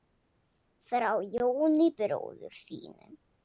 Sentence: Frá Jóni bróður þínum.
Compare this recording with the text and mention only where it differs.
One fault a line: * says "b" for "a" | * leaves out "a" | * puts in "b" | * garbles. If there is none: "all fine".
all fine